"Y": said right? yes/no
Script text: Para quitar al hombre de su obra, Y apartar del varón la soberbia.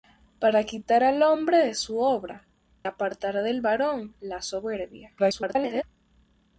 no